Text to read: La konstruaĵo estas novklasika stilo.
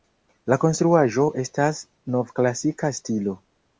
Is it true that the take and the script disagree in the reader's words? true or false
false